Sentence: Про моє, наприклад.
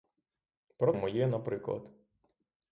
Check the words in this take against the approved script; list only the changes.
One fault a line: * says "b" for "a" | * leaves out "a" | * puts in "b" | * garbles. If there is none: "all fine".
all fine